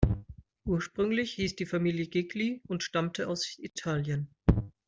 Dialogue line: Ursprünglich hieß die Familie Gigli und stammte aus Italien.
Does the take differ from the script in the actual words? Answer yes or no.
no